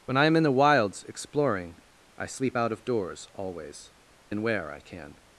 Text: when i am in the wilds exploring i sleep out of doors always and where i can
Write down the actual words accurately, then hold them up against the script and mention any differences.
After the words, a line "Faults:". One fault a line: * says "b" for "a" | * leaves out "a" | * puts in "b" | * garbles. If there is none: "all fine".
when i am in the wilds exploring i sleep out of doors always and where i can
Faults:
all fine